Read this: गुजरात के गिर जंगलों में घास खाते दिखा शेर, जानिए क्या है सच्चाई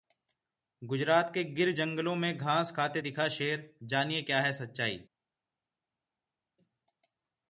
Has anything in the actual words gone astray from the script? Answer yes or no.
no